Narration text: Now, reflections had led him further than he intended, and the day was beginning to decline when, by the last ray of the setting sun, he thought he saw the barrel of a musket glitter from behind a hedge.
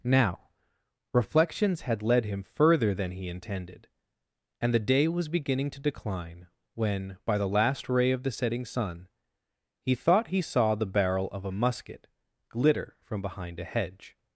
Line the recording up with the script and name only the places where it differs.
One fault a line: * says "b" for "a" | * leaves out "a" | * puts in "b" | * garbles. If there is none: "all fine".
all fine